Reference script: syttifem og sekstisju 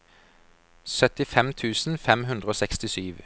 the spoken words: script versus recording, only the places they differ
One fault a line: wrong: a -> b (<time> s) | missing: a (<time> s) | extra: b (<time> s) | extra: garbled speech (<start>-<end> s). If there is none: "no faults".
extra: tusen fem hundre (1.5 s)